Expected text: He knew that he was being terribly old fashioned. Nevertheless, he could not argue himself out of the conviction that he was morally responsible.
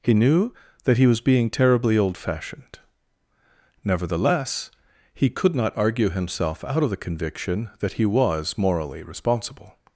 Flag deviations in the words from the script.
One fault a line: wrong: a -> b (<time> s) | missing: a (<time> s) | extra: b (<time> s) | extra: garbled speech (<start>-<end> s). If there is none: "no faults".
no faults